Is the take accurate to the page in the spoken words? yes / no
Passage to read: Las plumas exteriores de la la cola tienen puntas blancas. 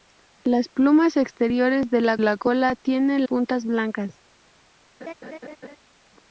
yes